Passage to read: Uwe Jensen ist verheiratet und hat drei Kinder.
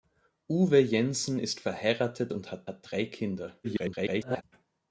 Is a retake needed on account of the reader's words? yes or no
yes